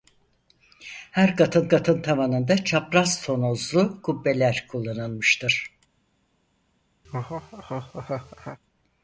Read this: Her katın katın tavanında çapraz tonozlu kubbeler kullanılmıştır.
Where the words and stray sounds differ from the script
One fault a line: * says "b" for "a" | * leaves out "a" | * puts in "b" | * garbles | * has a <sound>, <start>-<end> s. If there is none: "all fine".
* has a laugh, 7.0-8.6 s